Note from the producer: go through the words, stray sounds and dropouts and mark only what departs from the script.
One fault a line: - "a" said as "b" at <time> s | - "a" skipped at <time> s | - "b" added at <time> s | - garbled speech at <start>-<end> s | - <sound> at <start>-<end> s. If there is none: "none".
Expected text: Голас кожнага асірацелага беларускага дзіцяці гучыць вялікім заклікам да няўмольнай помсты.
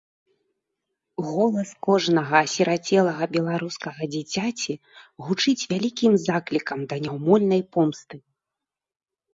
none